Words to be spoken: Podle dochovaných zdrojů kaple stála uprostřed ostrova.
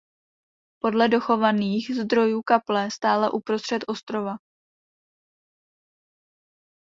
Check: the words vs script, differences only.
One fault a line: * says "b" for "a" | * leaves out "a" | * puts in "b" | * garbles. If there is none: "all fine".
all fine